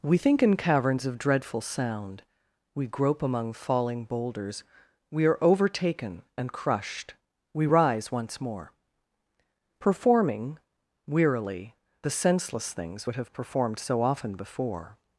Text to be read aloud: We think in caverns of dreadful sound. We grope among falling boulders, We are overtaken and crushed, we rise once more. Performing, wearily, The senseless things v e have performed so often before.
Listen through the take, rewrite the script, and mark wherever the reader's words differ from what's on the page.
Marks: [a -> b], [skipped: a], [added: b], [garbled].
We think in caverns of dreadful sound. We grope among falling boulders, We are overtaken and crushed, we rise once more. Performing, wearily, The senseless things [v e -> would] have performed so often before.